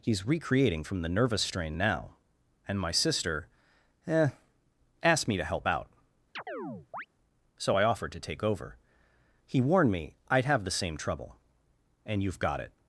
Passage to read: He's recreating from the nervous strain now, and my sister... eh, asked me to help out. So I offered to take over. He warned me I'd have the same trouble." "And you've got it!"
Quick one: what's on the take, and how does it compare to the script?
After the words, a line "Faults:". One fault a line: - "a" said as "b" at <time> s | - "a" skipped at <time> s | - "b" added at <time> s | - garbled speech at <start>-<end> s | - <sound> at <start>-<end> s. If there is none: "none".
He's recreating from the nervous strain now, and my sister... eh, asked me to help out. So I offered to take over. He warned me I'd have the same trouble." "And you've got it!"
Faults:
- chirp at 6.4-7.1 s